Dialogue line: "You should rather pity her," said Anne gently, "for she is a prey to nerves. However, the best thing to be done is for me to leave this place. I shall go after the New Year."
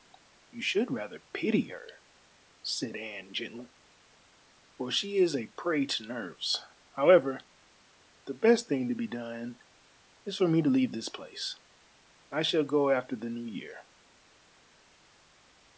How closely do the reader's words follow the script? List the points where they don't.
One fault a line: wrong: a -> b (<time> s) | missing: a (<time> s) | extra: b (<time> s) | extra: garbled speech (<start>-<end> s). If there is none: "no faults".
no faults